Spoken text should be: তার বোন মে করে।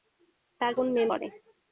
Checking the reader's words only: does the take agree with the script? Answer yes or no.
yes